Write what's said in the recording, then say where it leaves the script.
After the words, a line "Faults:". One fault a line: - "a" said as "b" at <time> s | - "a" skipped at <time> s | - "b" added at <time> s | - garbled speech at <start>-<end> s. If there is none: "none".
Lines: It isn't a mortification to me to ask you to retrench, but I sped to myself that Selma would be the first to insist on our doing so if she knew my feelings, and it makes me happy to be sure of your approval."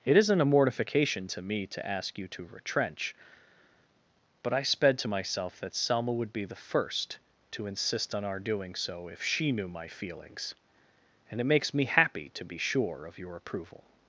It isn't a mortification to me to ask you to retrench, but I sped to myself that Selma would be the first to insist on our doing so if she knew my feelings, and it makes me happy to be sure of your approval."
Faults:
none